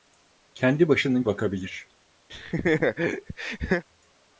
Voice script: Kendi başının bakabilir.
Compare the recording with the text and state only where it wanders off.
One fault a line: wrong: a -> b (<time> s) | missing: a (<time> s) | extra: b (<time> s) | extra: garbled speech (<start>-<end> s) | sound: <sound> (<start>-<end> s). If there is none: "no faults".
sound: laugh (2.3-3.8 s)